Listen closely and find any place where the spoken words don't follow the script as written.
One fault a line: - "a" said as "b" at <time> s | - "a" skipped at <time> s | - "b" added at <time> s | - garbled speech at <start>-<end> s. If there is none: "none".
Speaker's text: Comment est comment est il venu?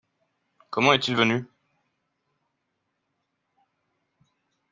- "comment est" skipped at 1.1 s